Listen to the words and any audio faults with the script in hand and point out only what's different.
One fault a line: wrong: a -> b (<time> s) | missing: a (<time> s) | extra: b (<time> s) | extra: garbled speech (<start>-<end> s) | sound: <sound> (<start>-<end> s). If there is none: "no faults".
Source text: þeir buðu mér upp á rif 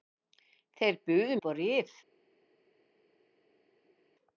missing: mér (1.4 s)